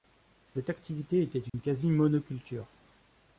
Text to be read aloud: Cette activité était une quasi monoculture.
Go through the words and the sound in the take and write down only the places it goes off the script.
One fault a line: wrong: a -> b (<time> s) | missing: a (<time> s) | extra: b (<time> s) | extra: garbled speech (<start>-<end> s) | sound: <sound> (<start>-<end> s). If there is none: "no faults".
sound: dropout (1.5-1.5 s)